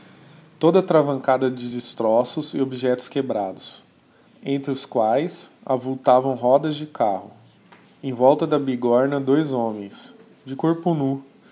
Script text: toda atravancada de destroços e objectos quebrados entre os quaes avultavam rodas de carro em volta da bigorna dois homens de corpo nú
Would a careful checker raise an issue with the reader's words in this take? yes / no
no